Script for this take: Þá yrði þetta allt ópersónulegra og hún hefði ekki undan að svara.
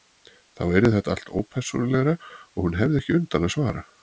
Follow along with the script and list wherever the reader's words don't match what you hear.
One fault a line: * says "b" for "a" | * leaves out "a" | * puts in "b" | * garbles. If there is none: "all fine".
all fine